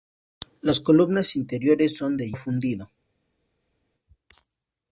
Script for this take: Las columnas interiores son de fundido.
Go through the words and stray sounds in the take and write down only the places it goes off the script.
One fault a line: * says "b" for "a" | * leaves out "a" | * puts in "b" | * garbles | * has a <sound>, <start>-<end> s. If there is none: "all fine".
all fine